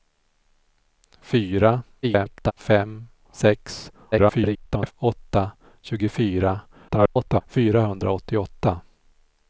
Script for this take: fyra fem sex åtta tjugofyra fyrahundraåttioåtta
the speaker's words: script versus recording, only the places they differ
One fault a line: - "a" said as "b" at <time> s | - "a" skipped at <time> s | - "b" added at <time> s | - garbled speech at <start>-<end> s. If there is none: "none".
- garbled speech at 2.0-2.5 s
- garbled speech at 4.1-4.9 s
- garbled speech at 6.9-7.4 s